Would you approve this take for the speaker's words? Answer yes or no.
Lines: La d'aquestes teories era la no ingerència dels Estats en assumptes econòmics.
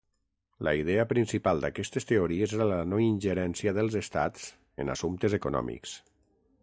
no